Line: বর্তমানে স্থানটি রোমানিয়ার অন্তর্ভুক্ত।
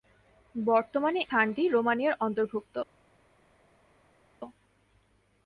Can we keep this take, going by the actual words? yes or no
yes